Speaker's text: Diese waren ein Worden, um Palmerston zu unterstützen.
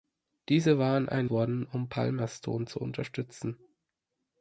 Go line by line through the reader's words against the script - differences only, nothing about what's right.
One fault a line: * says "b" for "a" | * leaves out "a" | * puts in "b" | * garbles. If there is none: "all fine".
all fine